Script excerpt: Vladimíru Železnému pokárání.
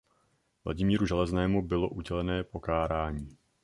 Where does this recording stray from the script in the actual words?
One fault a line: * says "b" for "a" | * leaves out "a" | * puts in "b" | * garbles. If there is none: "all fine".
* puts in "bylo udělené"